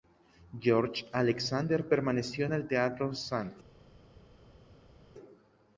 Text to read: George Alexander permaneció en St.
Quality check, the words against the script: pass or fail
fail